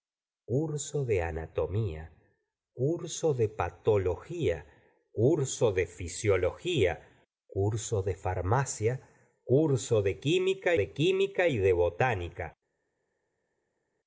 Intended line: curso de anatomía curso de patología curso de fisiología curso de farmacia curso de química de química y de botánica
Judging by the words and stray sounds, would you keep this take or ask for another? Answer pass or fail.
pass